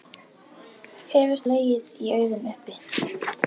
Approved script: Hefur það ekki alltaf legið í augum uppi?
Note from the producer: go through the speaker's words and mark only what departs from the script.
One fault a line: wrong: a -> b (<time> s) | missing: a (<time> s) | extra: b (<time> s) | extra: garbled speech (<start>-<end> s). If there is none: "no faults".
missing: það ekki alltaf (1.4 s)